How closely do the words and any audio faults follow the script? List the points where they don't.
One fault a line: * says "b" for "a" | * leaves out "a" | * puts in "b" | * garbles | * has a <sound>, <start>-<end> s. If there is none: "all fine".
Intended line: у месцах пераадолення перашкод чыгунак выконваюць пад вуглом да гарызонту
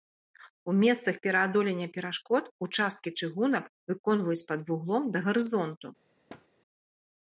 * puts in "участкі"
* has a thud, 6.3-6.5 s